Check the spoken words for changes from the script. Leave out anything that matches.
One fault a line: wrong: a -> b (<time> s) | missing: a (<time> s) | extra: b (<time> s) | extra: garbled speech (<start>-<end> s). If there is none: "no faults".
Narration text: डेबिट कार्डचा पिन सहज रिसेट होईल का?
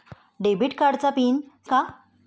missing: सहज रिसेट होईल (1.4 s)